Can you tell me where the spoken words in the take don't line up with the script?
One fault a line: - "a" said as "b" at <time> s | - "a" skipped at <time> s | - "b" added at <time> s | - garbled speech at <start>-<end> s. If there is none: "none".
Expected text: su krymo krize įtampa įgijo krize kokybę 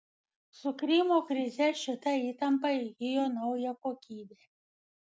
- "šita" added at 1.8 s
- "krize" said as "naują" at 3.4 s